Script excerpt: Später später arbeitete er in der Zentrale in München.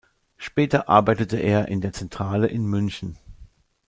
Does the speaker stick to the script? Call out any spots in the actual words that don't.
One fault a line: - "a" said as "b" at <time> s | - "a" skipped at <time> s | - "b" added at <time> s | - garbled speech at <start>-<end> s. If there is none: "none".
- "später" skipped at 0.9 s